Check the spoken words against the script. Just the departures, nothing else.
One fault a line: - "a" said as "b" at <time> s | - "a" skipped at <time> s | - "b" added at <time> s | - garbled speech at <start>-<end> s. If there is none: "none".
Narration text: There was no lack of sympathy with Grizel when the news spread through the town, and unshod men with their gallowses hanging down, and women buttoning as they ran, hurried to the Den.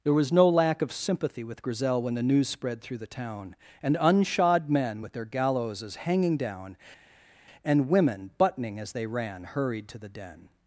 none